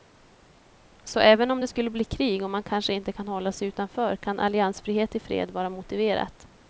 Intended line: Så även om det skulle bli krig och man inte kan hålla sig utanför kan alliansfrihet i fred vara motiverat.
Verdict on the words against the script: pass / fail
fail